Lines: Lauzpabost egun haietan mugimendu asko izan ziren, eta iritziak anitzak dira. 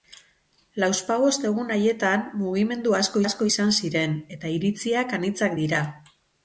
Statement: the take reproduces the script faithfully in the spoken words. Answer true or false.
false